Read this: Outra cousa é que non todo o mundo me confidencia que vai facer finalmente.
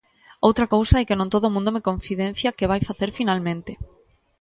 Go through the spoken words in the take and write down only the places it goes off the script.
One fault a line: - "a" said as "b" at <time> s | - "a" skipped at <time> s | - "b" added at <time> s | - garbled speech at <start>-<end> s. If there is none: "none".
none